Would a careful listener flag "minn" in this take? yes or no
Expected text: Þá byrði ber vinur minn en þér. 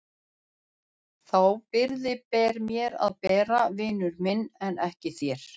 no